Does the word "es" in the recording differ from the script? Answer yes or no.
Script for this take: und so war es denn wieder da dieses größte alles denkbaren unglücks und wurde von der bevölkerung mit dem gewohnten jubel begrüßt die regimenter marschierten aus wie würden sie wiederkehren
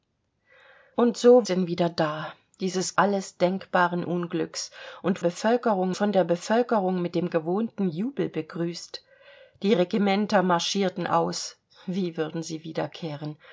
yes